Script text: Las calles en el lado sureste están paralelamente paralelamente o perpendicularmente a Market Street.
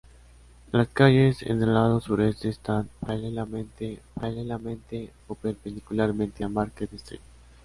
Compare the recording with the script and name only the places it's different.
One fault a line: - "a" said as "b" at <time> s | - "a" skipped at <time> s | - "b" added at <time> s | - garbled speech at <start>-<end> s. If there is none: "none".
none